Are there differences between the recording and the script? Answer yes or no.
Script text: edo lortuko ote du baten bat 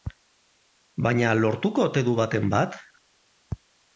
yes